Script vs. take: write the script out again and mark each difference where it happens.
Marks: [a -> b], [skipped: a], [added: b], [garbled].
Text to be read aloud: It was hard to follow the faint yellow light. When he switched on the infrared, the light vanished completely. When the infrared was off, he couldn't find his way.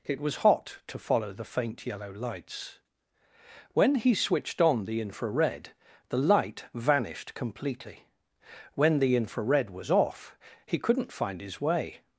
It was [hard -> hot] to follow the faint yellow [light. -> lights] When he switched on the infrared, the light vanished completely. When the infrared was off, he couldn't find his way.